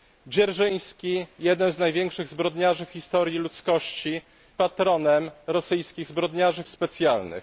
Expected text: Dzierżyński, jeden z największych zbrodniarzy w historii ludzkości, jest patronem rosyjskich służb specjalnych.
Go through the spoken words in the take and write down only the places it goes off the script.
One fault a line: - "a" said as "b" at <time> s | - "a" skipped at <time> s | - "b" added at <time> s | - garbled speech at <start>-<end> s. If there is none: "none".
- "jest" skipped at 4.2 s
- "służb" said as "zbrodniarzy" at 6.0 s